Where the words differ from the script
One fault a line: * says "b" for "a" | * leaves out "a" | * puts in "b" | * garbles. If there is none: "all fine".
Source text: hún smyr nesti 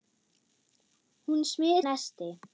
all fine